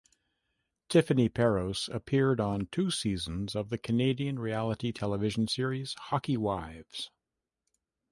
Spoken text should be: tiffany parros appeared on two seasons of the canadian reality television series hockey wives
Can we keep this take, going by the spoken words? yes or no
yes